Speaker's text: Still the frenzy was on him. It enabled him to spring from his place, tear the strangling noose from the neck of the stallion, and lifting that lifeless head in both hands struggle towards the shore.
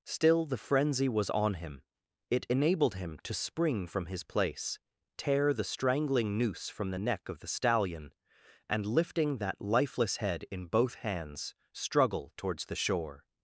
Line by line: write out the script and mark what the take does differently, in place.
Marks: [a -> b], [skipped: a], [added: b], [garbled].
Still the frenzy was on him. It enabled him to spring from his place, tear the strangling noose from the neck of the stallion, and lifting that lifeless head in both hands struggle towards the shore.